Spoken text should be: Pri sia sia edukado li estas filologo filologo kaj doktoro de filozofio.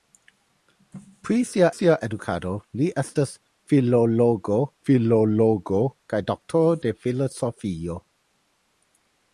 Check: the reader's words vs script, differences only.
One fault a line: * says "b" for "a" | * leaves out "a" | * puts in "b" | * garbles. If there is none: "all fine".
all fine